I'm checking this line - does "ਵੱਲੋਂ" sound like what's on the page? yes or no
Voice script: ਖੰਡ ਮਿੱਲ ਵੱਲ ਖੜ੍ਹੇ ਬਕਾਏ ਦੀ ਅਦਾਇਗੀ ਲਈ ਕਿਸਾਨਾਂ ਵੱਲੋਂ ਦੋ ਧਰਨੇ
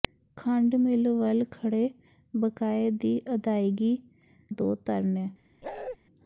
no